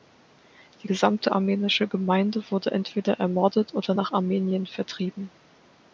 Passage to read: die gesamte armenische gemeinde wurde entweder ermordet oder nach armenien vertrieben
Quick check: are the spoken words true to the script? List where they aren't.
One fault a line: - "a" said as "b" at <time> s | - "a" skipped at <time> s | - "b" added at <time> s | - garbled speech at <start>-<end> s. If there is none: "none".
none